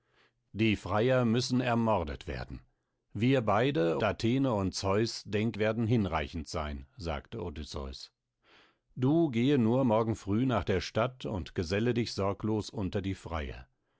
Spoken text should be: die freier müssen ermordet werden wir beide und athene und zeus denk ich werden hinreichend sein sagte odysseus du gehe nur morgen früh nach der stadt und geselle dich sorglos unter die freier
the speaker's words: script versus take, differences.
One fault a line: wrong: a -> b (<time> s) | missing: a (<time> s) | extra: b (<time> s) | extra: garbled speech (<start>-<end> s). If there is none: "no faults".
missing: und (4.0 s)
missing: ich (5.6 s)